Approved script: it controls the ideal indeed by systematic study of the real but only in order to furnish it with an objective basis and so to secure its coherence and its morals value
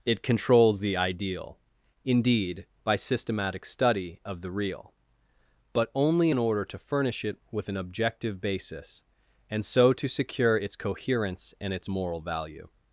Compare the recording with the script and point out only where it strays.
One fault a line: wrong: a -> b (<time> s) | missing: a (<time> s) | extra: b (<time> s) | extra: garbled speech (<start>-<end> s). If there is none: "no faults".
wrong: morals -> moral (11.9 s)